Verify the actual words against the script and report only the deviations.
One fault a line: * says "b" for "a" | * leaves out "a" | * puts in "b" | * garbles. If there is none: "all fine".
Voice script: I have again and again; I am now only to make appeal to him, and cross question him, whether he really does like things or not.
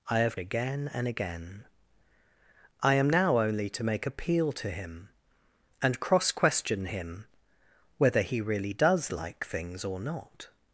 all fine